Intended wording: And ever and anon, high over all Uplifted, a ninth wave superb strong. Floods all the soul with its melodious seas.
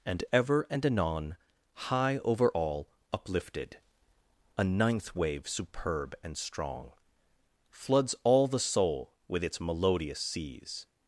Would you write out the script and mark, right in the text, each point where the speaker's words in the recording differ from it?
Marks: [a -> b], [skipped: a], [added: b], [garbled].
And ever and anon, high over all Uplifted, a ninth wave superb [added: and] strong. Floods all the soul with its melodious seas.